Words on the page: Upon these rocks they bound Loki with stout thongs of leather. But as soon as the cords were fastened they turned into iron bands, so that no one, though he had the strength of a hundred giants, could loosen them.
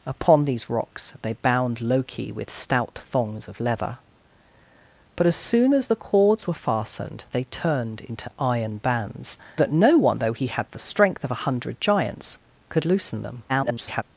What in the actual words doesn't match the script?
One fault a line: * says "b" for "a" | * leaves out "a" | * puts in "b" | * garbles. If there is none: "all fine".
* leaves out "so"
* garbles